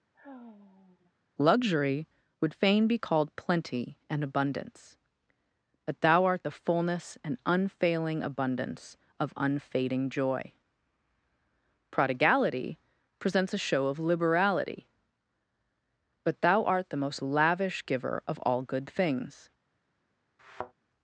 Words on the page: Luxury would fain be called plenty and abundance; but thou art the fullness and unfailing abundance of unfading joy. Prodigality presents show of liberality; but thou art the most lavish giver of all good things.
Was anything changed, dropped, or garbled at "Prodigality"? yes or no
no